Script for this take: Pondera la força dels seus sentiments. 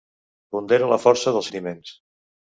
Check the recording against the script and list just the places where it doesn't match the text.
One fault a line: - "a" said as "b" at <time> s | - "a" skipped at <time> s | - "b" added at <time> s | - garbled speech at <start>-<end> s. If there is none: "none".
- "seus" skipped at 1.5 s